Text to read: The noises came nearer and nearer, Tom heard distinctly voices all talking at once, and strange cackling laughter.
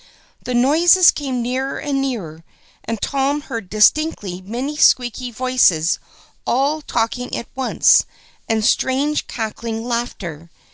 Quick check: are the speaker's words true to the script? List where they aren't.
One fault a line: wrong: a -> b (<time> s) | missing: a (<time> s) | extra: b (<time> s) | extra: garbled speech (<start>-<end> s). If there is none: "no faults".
extra: and (2.9 s)
extra: many squeaky (4.4 s)